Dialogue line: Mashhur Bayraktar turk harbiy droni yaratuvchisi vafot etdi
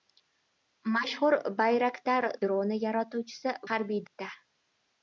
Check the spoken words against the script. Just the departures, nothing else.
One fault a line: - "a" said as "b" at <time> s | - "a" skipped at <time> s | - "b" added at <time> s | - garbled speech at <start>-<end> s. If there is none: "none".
- "turk harbiy" skipped at 2.3 s
- "vafot" said as "harbiy" at 3.7 s